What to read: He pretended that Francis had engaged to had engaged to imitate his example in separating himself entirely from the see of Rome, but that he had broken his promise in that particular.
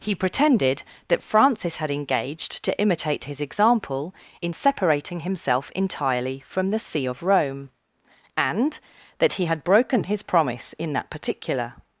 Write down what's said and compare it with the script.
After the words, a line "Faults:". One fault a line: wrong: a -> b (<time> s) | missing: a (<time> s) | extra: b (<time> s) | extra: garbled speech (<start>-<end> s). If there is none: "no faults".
He pretended that Francis had engaged to imitate his example in separating himself entirely from the see of Rome, and that he had broken his promise in that particular.
Faults:
missing: had engaged to (2.8 s)
wrong: but -> and (8.4 s)